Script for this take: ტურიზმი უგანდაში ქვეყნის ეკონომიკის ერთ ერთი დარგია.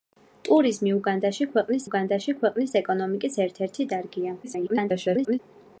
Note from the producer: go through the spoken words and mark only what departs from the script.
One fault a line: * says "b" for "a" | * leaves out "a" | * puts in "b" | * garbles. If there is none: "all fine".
* puts in "უგანდაში ქვეყნის"
* garbles